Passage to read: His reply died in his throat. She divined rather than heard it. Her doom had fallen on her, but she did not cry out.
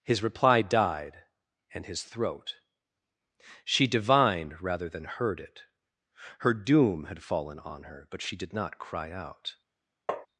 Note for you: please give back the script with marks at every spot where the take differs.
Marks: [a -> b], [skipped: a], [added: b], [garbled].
His reply died [in -> and] his throat. She divined rather than heard it. Her doom had fallen on her, but she did not cry out.